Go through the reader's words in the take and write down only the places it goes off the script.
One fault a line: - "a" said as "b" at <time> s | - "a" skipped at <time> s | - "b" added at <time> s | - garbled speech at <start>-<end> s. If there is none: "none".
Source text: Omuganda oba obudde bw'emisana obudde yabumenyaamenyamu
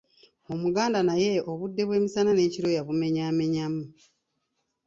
- "oba" said as "naye" at 1.1 s
- "obudde" said as "n'ekiro" at 2.3 s